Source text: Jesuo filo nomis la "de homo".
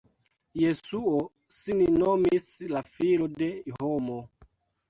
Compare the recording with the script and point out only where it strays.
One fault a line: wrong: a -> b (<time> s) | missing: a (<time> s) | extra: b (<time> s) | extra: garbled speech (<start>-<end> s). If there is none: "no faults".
wrong: filo -> sin (1.6 s)
extra: filo (3.0 s)